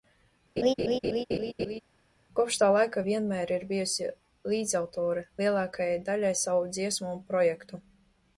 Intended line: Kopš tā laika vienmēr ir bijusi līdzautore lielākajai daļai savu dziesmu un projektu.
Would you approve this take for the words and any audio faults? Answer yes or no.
no